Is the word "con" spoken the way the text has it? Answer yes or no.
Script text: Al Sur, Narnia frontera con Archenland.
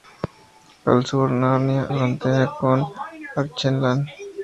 yes